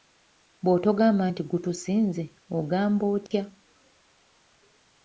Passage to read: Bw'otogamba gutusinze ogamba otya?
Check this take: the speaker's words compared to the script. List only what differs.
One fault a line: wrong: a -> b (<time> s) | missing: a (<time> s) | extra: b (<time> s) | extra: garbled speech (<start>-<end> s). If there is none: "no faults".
extra: nti (1.3 s)